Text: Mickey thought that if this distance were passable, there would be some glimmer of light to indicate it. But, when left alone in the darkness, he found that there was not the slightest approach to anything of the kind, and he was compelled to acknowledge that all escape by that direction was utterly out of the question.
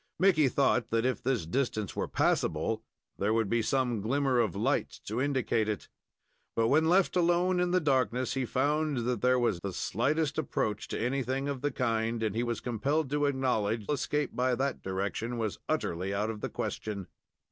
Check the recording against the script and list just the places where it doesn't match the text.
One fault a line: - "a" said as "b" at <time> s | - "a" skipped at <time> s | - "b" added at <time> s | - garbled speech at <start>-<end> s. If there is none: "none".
- "not" skipped at 9.6 s
- "that all" skipped at 13.9 s